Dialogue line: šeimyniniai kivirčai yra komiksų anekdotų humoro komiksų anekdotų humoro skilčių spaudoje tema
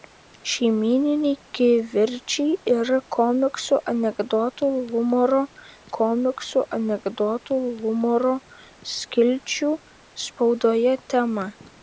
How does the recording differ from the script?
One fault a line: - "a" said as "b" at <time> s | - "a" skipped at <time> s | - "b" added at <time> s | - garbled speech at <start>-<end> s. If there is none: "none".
none